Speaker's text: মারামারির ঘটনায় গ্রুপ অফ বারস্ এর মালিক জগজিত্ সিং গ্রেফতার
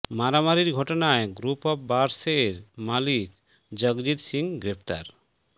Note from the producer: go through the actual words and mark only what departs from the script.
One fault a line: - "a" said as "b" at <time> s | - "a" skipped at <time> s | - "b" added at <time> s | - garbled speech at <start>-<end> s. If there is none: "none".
none